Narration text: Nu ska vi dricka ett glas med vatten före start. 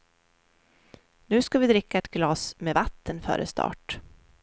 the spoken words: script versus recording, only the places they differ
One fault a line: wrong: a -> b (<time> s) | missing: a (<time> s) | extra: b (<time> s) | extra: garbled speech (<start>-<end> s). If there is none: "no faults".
no faults